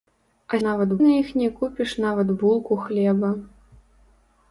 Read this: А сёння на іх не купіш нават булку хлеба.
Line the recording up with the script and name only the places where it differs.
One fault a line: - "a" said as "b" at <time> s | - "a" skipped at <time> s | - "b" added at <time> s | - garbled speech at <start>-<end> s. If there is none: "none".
- "сёння" said as "нават" at 0.7 s